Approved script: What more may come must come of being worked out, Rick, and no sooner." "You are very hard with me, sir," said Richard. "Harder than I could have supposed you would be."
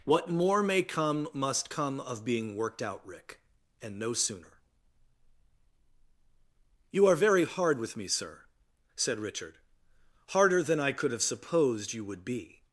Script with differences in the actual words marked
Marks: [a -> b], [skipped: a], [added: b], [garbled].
What more may come must come of being worked out, Rick, and no sooner." "You are very hard with me, sir," said Richard. "Harder than I could have supposed you would be."